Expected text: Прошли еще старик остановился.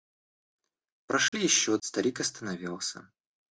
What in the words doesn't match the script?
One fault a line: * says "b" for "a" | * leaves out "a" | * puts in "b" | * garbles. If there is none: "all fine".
all fine